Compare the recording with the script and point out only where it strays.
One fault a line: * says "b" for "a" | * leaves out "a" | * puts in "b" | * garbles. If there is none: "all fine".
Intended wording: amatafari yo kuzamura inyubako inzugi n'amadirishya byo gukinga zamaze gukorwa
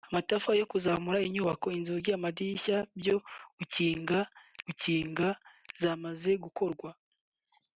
* puts in "gukinga"